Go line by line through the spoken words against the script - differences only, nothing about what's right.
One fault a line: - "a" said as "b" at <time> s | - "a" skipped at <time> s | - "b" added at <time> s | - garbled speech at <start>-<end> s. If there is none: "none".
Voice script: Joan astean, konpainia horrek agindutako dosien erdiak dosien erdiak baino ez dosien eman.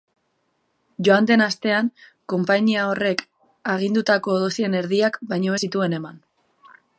- "den" added at 1.3 s
- "dosien erdiak" skipped at 5.2 s
- "dosien" said as "zituen" at 5.7 s